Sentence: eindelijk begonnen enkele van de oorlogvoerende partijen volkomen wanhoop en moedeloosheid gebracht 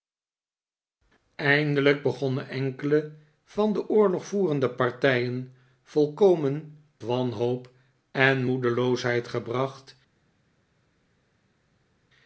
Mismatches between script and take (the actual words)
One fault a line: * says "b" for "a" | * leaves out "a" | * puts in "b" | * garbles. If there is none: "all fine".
all fine